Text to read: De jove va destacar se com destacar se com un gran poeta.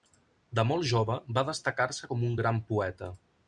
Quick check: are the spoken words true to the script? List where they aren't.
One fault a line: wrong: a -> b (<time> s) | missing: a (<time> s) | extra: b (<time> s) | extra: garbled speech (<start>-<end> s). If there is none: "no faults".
extra: molt (0.7 s)
missing: destacar se com (2.2 s)